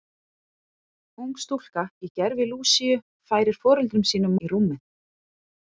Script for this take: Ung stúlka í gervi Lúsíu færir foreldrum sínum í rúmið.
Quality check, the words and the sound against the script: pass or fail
pass